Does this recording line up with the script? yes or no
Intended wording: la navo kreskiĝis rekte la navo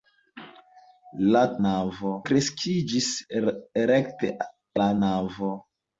yes